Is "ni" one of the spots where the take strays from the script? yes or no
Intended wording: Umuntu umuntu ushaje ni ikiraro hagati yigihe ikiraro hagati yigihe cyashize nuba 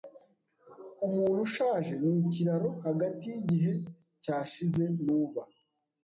no